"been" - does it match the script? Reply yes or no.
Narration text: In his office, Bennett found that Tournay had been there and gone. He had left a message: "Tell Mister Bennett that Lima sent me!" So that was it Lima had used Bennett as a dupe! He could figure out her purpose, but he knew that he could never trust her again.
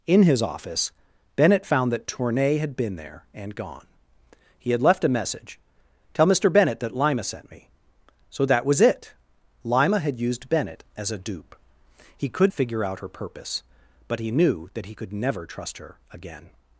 yes